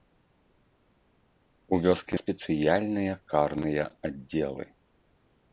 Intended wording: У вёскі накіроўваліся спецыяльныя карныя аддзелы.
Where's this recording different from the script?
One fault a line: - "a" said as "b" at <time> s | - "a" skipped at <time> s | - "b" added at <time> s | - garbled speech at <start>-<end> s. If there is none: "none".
- "накіроўваліся" skipped at 2.1 s